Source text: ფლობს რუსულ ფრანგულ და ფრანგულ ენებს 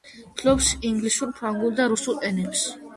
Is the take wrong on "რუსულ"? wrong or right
wrong